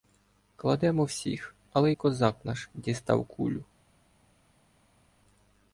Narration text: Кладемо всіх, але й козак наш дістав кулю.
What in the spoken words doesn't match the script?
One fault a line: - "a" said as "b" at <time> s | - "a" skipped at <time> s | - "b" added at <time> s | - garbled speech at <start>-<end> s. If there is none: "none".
none